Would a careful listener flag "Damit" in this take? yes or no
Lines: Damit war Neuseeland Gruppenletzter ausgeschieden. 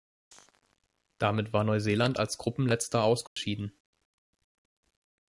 no